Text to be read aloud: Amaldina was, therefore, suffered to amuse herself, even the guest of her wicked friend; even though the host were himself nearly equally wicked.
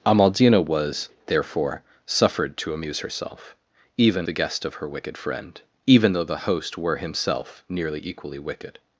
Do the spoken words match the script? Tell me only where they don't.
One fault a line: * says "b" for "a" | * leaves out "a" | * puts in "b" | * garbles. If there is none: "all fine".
all fine